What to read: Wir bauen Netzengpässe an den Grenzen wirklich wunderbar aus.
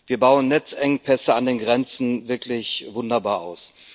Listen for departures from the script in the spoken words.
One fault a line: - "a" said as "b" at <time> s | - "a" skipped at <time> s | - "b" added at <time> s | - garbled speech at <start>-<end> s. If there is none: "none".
none